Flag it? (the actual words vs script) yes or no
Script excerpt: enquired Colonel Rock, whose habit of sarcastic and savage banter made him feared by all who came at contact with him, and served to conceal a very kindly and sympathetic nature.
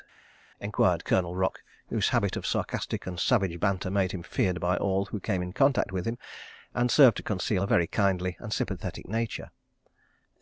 yes